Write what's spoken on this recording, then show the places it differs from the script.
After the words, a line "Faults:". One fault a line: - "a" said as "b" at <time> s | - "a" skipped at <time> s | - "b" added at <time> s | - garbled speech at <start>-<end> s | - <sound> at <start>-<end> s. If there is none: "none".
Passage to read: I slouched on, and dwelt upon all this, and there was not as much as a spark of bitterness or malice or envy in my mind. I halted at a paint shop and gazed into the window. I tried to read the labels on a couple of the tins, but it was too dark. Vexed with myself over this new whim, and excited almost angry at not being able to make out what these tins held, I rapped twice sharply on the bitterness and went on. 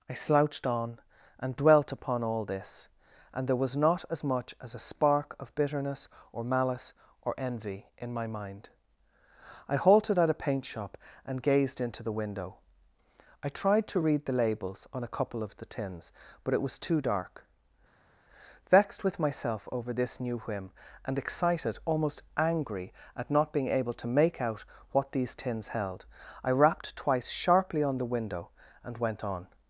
I slouched on, and dwelt upon all this, and there was not as much as a spark of bitterness or malice or envy in my mind. I halted at a paint shop and gazed into the window. I tried to read the labels on a couple of the tins, but it was too dark. Vexed with myself over this new whim, and excited almost angry at not being able to make out what these tins held, I rapped twice sharply on the window and went on.
Faults:
- "bitterness" said as "window" at 28.1 s